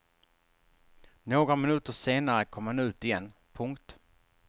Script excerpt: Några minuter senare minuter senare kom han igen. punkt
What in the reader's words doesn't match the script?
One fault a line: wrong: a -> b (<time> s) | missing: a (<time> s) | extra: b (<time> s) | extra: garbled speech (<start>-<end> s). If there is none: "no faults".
missing: minuter senare (2.5 s)
extra: ut (2.8 s)